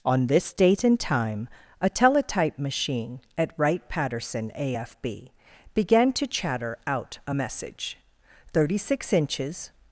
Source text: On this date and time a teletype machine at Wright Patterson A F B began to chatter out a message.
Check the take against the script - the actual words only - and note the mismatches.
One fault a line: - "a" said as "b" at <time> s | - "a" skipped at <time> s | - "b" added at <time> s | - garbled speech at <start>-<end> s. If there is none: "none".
- "Thirty six inches" added at 8.5 s